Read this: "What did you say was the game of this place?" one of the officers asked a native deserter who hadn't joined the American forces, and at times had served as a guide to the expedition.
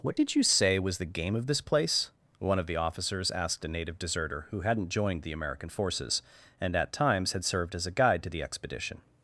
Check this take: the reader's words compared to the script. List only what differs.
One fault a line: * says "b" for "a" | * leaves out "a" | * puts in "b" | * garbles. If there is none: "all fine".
all fine